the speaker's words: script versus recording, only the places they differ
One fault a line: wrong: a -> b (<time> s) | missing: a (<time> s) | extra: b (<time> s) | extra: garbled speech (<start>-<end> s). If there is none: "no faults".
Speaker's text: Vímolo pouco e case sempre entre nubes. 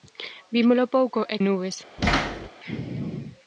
missing: case sempre entre (1.4 s)